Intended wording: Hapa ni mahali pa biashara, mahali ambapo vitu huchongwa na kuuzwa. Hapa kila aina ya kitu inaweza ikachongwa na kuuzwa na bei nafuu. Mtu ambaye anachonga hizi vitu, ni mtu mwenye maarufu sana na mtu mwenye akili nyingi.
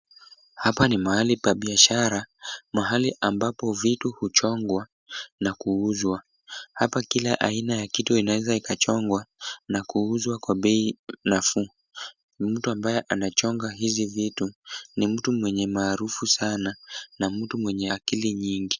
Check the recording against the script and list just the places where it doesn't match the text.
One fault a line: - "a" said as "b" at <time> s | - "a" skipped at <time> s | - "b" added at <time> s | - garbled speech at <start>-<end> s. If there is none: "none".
- "na" said as "kwa" at 10.4 s